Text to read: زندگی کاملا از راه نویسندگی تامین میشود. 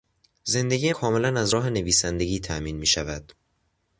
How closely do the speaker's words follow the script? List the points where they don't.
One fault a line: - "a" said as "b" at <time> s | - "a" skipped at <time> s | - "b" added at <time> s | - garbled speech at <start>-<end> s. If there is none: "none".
none